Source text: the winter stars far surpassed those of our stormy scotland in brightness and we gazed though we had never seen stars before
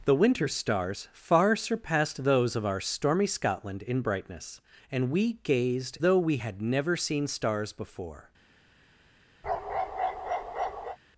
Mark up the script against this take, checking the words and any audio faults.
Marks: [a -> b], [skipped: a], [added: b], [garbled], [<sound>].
the winter stars far surpassed those of our stormy scotland in brightness and we gazed though we had never seen stars before [bark]